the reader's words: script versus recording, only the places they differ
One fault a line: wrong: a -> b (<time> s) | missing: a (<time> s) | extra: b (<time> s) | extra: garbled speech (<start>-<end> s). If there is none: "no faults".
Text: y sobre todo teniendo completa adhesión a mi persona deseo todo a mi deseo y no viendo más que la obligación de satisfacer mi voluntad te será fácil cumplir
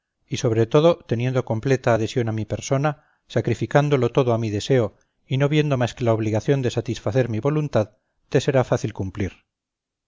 wrong: deseo -> sacrificándolo (3.3 s)